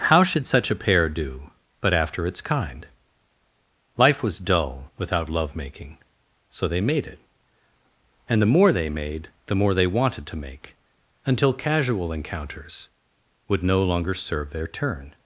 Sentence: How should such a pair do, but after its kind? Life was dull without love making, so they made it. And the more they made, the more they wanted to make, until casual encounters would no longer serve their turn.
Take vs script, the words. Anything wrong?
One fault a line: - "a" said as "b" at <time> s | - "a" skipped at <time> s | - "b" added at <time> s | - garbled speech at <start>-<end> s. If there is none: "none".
none